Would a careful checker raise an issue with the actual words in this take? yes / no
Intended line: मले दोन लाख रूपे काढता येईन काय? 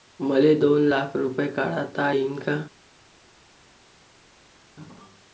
no